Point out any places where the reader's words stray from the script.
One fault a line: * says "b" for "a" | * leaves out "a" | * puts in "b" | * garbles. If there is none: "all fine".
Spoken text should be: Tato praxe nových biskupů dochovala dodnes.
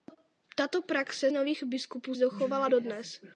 all fine